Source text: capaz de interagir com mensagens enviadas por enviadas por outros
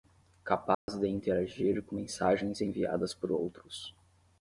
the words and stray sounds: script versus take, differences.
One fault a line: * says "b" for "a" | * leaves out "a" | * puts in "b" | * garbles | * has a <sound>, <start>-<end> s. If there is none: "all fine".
* has a dropout, 0.7-0.9 s
* leaves out "enviadas por"